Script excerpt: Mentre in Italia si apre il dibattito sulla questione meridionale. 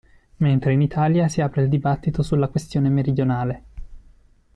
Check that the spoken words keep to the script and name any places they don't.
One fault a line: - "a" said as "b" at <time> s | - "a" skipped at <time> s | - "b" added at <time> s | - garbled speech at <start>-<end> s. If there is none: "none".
none